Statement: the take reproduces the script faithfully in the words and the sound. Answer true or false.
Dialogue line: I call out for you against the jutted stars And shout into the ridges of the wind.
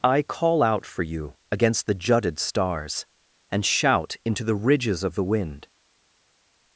true